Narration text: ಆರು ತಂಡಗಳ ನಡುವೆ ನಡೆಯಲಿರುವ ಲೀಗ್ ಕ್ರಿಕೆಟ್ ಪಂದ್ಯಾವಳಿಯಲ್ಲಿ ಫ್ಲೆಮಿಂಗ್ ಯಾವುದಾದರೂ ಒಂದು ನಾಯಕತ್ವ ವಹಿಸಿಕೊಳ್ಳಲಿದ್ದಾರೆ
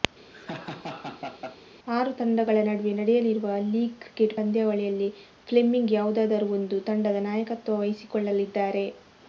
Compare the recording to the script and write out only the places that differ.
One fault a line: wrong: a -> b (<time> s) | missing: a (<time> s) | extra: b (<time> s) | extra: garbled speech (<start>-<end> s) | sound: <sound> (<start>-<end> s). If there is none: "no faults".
sound: laugh (0.3-1.6 s)
extra: ತಂಡದ (6.9 s)